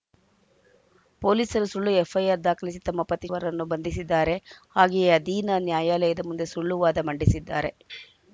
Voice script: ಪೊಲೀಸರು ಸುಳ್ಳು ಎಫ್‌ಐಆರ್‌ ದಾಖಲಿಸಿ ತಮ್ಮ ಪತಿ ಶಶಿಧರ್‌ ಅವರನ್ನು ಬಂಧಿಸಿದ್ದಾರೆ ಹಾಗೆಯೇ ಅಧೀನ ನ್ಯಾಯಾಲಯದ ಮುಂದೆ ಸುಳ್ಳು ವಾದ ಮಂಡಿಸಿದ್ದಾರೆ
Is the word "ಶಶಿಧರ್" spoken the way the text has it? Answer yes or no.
no